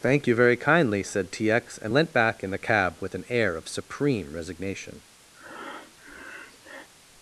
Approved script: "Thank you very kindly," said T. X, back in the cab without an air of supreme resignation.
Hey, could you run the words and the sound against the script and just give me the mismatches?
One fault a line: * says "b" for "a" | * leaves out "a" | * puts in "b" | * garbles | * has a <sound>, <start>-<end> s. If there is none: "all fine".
* puts in "and leant"
* says "with" for "without"
* has a breath, 5.3-6.9 s